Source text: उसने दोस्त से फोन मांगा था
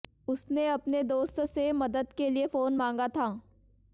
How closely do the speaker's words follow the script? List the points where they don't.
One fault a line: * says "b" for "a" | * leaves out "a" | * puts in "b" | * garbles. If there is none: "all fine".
* puts in "अपने"
* puts in "मदद के लिए"